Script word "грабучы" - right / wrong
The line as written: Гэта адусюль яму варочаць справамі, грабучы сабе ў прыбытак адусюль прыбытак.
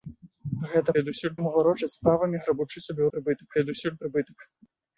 right